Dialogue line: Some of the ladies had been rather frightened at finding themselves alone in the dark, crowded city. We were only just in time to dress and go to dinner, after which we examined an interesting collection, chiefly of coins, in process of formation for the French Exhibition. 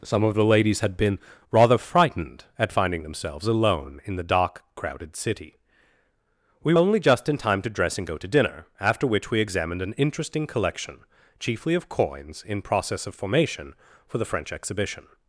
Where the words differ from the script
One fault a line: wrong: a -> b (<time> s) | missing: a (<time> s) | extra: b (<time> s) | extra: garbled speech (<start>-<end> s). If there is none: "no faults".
missing: were (6.7 s)